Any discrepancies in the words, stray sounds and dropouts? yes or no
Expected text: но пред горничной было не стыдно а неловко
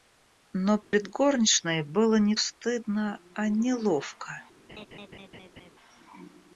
yes